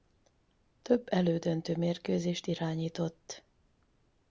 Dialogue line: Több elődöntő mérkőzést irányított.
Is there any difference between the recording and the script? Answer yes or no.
no